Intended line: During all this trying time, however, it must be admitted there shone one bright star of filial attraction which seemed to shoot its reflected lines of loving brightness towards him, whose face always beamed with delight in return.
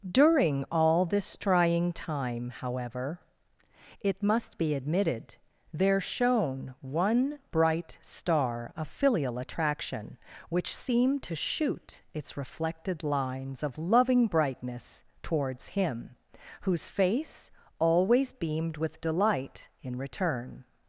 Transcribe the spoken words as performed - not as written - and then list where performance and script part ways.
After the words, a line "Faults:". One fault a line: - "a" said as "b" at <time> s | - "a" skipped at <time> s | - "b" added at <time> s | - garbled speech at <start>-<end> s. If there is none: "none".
During all this trying time, however, it must be admitted there shone one bright star of filial attraction which seemed to shoot its reflected lines of loving brightness towards him, whose face always beamed with delight in return.
Faults:
none